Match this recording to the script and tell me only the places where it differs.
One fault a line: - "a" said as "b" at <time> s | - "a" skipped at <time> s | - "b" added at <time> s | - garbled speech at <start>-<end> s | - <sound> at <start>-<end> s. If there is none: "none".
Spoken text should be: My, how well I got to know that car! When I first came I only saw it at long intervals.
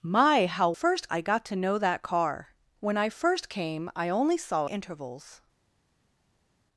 - "well" said as "first" at 0.7 s
- "it at long" skipped at 4.7 s